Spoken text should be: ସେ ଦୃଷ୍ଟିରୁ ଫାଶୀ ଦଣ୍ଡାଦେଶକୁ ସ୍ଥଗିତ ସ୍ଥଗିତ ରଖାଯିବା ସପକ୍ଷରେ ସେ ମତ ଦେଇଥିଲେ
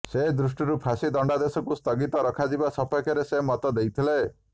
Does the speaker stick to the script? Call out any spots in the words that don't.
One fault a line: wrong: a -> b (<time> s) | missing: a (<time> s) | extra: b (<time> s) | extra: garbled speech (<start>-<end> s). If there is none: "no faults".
missing: ସ୍ଥଗିତ (2.2 s)